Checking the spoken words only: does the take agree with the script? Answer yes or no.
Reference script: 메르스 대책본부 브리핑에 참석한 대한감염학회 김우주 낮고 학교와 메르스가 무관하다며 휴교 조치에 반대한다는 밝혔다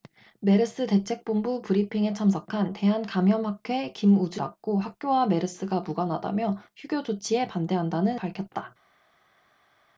yes